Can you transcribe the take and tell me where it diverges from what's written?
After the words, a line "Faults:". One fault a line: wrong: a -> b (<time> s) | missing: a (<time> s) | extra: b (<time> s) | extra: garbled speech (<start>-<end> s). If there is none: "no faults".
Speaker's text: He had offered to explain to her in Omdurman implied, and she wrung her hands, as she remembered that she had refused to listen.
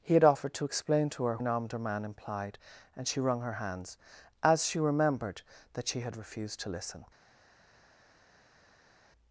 He had offered to explain to her in Omdurman implied, and she wrung her hands, as she remembered that she had refused to listen.
Faults:
no faults